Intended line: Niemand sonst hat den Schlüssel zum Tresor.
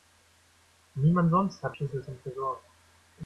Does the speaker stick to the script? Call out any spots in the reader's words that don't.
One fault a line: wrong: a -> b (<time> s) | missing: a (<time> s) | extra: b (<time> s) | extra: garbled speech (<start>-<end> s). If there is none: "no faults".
missing: den (1.8 s)